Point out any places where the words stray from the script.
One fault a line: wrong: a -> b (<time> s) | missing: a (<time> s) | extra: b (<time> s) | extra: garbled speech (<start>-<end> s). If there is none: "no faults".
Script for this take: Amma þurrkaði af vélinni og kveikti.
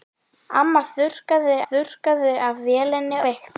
extra: þurrkaði (1.7 s)
missing: og (3.2 s)